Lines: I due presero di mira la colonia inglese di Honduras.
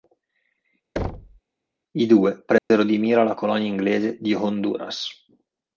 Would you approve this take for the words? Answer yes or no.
yes